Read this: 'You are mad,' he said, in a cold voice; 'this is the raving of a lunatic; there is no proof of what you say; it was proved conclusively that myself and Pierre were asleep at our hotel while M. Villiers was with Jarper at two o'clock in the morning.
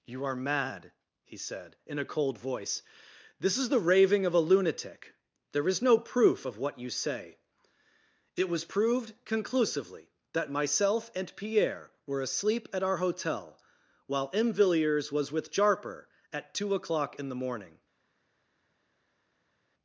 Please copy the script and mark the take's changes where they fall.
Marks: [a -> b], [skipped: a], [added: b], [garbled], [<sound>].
'You are mad,' he said, in a cold voice; 'this is the raving of a lunatic; there is no proof of what you say; it was proved conclusively that myself and Pierre were asleep at our hotel while M. Villiers was with Jarper at two o'clock in the morning.